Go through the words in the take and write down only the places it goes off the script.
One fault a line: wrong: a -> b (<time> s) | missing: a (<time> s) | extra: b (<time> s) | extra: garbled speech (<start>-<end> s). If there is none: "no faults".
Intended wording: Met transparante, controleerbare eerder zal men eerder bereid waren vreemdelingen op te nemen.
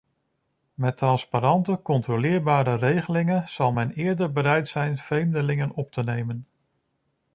wrong: eerder -> regelingen (2.8 s)
wrong: waren -> zijn (4.7 s)